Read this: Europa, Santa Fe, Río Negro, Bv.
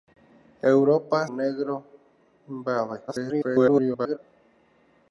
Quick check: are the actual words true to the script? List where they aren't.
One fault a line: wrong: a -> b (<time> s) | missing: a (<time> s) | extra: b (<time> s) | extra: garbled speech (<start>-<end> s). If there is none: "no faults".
missing: Santa Fe Río (1.3 s)
extra: garbled speech (3.1-4.2 s)